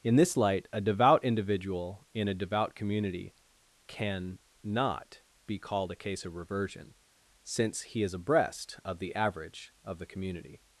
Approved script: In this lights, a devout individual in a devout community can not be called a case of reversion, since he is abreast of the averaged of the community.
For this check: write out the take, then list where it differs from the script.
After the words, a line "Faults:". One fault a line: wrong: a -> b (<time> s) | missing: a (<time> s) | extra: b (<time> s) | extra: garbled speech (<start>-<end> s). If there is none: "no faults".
In this light, a devout individual in a devout community can not be called a case of reversion, since he is abreast of the average of the community.
Faults:
wrong: lights -> light (0.3 s)
wrong: averaged -> average (9.1 s)